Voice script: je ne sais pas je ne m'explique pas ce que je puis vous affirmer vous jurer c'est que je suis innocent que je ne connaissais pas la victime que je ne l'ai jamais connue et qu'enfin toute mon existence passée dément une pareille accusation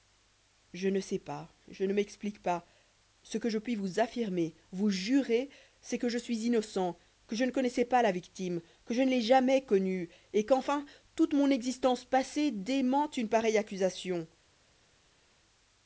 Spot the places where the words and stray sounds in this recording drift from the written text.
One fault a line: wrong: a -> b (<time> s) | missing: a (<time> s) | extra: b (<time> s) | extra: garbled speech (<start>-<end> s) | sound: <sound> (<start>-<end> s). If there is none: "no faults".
no faults